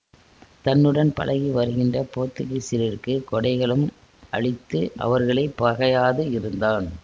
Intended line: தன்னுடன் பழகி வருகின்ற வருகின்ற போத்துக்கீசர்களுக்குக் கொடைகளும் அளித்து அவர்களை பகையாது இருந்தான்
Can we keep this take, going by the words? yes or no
no